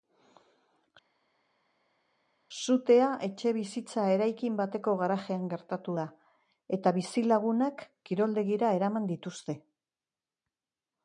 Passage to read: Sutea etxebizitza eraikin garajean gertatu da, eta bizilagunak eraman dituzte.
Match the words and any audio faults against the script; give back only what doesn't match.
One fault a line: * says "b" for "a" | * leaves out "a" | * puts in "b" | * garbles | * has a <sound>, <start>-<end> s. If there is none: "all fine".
* puts in "bateko"
* puts in "kiroldegira"